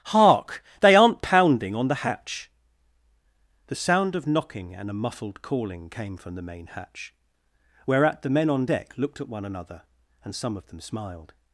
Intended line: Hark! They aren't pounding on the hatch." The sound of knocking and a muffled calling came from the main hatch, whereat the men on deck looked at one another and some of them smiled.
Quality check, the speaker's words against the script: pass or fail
pass